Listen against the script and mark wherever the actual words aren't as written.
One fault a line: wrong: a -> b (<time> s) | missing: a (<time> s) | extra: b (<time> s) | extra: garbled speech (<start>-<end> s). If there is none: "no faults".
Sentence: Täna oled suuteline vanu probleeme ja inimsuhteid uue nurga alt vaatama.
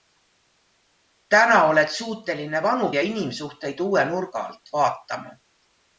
missing: probleeme (2.9 s)